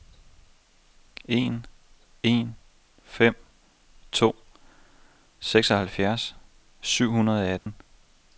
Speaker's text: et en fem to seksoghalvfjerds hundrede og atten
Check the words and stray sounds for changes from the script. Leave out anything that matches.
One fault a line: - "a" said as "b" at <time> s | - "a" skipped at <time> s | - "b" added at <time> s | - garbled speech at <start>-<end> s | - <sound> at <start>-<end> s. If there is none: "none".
- "et" said as "en" at 1.2 s
- "syv" added at 6.8 s
- dropout at 7.6-7.7 s